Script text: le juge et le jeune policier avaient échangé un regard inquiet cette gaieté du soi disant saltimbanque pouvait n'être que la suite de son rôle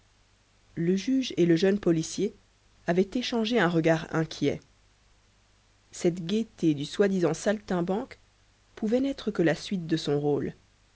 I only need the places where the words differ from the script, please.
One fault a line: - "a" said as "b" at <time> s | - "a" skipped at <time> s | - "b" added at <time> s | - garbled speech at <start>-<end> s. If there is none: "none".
none